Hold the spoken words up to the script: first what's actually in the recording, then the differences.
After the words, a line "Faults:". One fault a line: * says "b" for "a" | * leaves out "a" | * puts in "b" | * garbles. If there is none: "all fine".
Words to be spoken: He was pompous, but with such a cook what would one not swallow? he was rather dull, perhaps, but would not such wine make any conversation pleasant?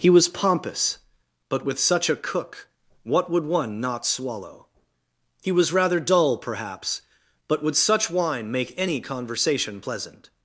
He was pompous, but with such a cook what would one not swallow? he was rather dull, perhaps, but would such wine make any conversation pleasant?
Faults:
* leaves out "not"